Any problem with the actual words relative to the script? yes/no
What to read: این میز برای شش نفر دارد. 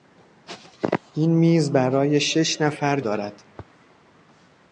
no